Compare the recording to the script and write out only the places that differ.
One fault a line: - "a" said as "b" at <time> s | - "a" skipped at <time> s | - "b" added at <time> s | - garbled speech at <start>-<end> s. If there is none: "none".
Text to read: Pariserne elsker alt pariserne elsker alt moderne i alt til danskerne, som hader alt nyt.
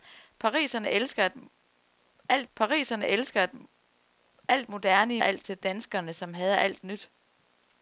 none